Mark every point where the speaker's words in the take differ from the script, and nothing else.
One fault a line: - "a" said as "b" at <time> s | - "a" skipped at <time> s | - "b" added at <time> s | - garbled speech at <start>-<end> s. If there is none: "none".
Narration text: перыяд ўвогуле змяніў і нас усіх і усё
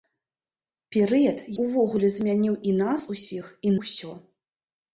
none